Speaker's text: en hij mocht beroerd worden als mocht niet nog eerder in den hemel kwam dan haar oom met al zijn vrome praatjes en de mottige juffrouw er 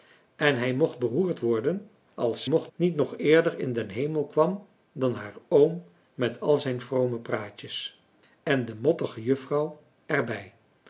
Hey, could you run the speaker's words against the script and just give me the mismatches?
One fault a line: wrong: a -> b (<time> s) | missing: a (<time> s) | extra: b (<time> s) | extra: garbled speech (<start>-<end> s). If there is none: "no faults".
no faults